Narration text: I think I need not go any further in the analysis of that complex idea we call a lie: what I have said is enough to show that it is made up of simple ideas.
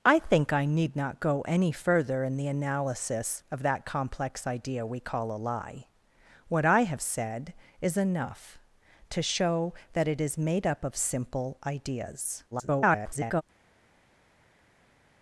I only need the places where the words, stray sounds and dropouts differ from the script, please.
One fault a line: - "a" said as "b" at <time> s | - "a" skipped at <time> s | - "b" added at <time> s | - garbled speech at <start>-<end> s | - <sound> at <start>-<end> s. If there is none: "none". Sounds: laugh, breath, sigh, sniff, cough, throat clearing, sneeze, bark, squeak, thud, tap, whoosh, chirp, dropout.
- garbled speech at 12.5-13.4 s